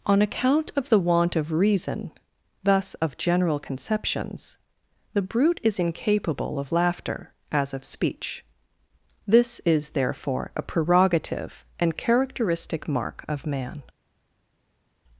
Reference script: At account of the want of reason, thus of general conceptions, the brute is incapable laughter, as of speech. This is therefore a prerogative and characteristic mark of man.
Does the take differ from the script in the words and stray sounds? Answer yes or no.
yes